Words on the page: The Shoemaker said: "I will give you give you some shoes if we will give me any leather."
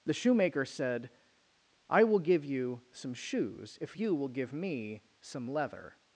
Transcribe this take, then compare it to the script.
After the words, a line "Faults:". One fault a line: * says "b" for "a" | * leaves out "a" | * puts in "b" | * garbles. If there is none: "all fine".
The Shoemaker said: "I will give you some shoes if you will give me some leather."
Faults:
* leaves out "give you"
* says "you" for "we"
* says "some" for "any"